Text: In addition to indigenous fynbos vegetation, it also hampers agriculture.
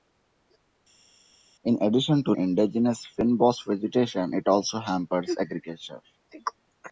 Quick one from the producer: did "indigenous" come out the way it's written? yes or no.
yes